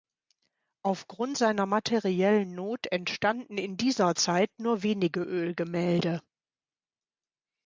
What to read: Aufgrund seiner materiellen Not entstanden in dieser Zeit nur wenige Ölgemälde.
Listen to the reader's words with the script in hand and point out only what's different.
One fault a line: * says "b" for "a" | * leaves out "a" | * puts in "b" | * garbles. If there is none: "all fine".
all fine